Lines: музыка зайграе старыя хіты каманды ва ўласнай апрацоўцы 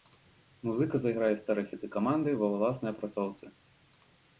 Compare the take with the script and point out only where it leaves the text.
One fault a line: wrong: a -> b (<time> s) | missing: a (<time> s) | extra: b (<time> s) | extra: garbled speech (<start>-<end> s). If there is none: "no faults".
no faults